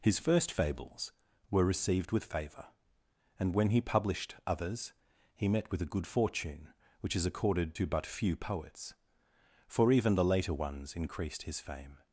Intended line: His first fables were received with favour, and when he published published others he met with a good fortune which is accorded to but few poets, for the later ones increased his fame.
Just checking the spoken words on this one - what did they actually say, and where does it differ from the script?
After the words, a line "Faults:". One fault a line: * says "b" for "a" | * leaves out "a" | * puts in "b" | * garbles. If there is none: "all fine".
His first fables were received with favour, and when he published others he met with a good fortune which is accorded to but few poets, for even the later ones increased his fame.
Faults:
* leaves out "published"
* puts in "even"